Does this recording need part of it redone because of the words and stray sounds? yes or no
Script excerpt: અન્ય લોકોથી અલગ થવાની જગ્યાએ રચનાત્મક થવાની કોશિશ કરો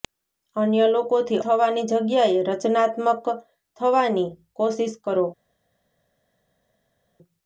yes